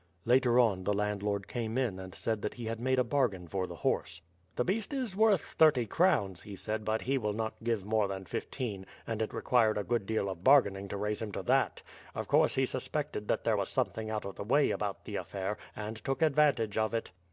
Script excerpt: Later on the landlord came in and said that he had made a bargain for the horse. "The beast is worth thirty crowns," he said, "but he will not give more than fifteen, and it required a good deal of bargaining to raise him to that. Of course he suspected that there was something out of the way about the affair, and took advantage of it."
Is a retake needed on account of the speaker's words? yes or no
no